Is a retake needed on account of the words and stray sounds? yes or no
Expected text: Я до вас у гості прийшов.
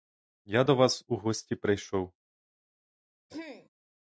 yes